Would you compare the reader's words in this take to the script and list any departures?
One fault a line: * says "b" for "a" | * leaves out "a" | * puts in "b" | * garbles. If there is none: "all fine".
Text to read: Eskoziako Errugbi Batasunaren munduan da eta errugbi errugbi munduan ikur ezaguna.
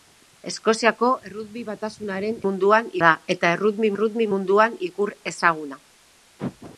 all fine